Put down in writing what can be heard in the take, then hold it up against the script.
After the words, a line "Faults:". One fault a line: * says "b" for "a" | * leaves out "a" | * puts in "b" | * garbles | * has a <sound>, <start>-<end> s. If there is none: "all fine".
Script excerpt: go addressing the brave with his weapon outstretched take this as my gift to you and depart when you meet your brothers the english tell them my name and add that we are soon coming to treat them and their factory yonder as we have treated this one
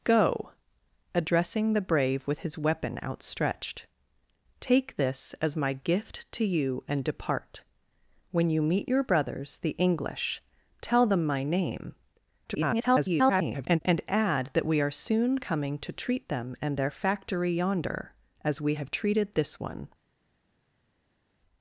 go addressing the brave with his weapon outstretched take this as my gift to you and depart when you meet your brothers the english tell them my name [garbled] and add that we are soon coming to treat them and their factory yonder as we have treated this one
Faults:
* garbles